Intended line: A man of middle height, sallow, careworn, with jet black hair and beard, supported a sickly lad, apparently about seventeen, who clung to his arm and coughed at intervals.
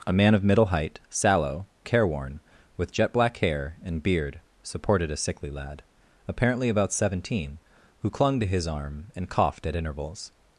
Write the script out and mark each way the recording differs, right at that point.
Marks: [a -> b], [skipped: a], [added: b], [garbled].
A man of middle height, sallow, careworn, with jet black hair and beard, supported a sickly lad, apparently about seventeen, who clung to his arm and coughed at intervals.